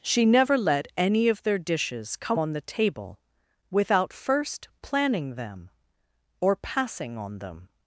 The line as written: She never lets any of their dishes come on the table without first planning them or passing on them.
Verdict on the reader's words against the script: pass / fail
fail